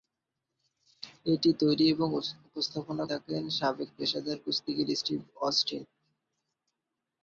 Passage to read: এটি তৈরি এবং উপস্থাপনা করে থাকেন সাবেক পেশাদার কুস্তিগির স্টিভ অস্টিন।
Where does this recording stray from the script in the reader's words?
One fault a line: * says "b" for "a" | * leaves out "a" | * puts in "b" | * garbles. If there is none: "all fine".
* leaves out "করে"